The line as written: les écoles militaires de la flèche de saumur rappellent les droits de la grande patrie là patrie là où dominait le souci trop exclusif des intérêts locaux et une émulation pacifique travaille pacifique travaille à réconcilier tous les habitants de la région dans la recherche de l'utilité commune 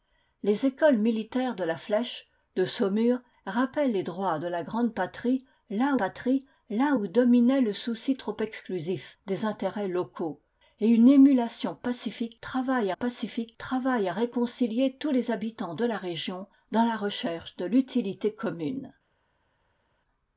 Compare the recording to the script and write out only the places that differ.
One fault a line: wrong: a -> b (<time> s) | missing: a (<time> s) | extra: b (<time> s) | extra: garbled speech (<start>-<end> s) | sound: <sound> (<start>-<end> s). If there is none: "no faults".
no faults